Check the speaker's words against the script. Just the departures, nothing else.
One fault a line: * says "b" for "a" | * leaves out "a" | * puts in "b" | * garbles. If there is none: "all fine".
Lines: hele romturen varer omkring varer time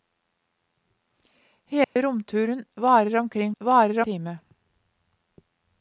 all fine